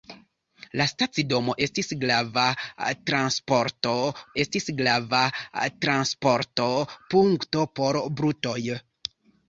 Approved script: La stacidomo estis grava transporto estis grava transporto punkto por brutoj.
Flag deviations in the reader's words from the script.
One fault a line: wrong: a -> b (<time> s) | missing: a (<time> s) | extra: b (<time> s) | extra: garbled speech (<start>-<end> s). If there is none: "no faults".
no faults